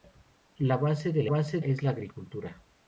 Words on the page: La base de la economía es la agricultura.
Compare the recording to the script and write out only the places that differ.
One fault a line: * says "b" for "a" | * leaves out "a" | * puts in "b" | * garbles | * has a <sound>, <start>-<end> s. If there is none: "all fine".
* says "base" for "economía"